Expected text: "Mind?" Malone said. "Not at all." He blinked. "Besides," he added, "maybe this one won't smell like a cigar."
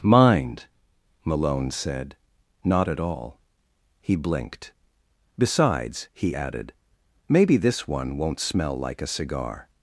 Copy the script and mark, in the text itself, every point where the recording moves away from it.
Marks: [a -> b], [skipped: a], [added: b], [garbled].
"Mind?" Malone said. "Not at all." He blinked. "Besides," he added, "maybe this one won't smell like a cigar."